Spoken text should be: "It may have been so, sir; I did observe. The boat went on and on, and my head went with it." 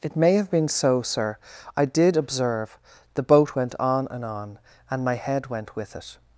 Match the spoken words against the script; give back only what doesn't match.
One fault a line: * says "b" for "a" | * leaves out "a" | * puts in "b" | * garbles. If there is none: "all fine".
all fine